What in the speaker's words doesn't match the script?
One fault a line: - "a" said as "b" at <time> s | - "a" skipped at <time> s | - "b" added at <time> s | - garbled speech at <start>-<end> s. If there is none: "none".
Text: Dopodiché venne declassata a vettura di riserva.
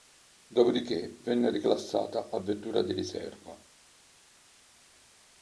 none